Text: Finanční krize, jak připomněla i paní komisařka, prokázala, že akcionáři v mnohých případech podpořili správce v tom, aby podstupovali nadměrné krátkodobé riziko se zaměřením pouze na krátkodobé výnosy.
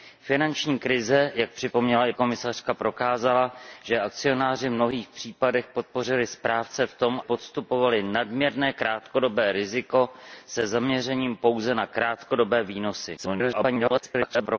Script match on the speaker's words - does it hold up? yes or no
no